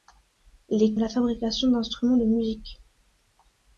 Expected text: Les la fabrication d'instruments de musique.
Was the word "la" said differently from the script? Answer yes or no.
no